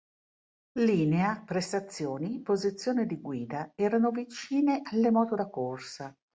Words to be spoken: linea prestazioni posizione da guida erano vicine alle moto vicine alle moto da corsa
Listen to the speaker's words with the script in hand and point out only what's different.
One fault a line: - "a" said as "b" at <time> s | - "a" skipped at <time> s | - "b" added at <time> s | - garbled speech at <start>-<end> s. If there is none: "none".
- "da" said as "di" at 3.1 s
- "vicine alle moto" skipped at 5.4 s